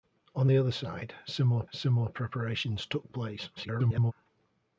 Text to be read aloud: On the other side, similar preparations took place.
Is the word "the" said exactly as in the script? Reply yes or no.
yes